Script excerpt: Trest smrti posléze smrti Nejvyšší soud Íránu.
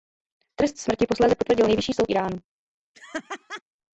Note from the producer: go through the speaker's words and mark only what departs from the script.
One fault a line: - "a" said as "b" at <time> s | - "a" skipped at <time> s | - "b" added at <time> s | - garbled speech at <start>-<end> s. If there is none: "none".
- "smrti" said as "potvrdil" at 1.4 s